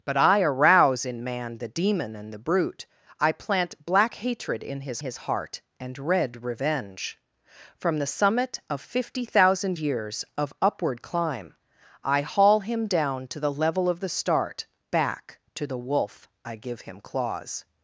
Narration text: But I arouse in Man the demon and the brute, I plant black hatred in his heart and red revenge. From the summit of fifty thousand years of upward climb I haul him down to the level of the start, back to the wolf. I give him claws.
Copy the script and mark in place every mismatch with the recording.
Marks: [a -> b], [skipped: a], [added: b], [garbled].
But I arouse in Man the demon and the brute, I plant black hatred in his [added: his] heart and red revenge. From the summit of fifty thousand years of upward climb I haul him down to the level of the start, back to the wolf. I give him claws.